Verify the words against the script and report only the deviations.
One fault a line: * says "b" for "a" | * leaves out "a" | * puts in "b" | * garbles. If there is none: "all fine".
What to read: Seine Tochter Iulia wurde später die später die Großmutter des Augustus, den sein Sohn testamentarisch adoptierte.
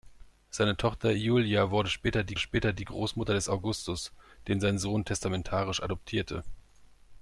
all fine